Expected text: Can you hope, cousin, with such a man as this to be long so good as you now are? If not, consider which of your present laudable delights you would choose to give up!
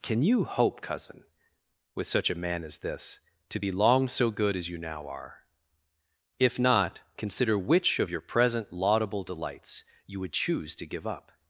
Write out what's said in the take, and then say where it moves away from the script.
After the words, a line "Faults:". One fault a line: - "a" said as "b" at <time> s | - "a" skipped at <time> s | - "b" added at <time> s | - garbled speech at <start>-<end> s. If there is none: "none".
Can you hope, cousin, with such a man as this to be long so good as you now are? If not, consider which of your present laudable delights you would choose to give up!
Faults:
none